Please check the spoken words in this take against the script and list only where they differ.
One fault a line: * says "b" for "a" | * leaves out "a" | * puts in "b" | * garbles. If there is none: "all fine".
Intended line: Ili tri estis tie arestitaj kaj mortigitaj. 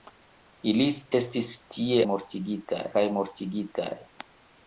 * leaves out "tri"
* says "mortigitaj" for "arestitaj"